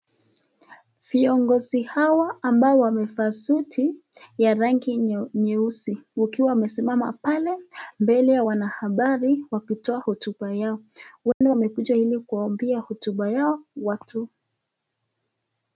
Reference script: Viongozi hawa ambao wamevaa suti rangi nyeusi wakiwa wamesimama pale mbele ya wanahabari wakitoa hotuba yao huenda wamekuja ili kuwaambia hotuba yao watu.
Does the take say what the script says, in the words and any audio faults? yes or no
no